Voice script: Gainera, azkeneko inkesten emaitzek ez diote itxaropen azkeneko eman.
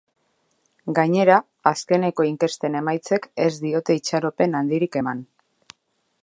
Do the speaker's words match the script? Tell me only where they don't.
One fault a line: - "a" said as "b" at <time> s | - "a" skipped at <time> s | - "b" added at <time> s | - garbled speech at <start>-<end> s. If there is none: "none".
- "azkeneko" said as "handirik" at 4.6 s